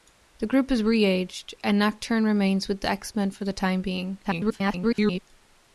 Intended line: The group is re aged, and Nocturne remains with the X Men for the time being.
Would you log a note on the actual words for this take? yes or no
yes